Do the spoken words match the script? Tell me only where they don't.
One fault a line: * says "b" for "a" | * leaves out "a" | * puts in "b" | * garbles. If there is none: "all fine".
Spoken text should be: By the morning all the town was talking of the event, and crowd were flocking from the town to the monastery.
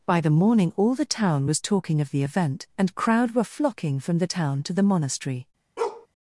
all fine